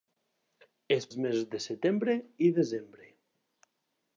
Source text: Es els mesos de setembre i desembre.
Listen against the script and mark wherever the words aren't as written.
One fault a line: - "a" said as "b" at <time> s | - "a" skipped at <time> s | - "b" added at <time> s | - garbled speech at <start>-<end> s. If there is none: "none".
none